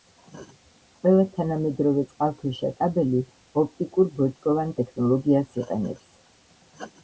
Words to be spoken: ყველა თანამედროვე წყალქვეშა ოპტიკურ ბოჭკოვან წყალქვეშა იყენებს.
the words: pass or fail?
fail